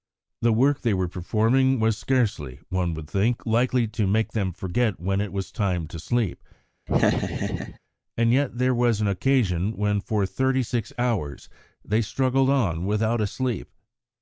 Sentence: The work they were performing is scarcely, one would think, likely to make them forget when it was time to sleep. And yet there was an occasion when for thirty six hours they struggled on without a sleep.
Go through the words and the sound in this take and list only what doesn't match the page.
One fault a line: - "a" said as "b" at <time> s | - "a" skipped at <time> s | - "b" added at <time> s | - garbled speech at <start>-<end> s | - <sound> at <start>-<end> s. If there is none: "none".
- "is" said as "was" at 1.8 s
- laugh at 6.9-7.8 s